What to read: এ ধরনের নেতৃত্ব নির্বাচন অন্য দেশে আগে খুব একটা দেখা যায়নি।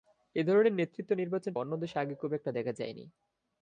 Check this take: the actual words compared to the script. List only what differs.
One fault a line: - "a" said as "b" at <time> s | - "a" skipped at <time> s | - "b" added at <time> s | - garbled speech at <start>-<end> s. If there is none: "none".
none